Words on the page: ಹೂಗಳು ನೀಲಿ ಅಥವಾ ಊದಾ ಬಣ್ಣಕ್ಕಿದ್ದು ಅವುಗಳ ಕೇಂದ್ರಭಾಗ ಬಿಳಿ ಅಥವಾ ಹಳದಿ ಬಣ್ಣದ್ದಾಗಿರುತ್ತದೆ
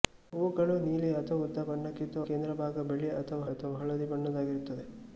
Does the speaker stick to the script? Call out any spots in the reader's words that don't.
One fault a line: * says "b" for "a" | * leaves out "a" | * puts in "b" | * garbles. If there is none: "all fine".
* leaves out "ಅವುಗಳ"
* puts in "ಅಥವಾ"